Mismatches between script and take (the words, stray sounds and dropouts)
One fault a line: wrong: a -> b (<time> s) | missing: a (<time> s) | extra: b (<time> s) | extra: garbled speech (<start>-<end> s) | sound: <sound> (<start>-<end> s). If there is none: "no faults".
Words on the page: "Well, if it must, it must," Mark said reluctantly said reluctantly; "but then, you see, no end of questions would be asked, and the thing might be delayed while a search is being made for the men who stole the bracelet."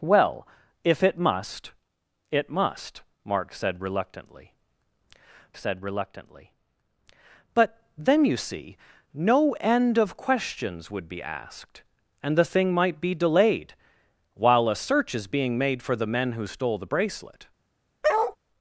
sound: bark (18.0-18.4 s)